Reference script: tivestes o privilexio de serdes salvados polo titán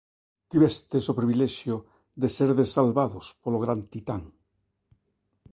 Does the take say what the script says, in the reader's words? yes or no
no